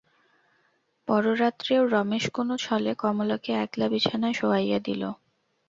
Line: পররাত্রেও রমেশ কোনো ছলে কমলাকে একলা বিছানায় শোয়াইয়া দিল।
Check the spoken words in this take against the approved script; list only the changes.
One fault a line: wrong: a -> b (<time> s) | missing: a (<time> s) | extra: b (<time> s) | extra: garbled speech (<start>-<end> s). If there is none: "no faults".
no faults